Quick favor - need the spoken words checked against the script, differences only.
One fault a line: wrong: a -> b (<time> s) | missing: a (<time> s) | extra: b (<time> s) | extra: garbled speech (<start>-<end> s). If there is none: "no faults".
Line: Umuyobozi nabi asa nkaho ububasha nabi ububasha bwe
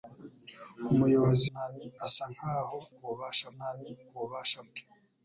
no faults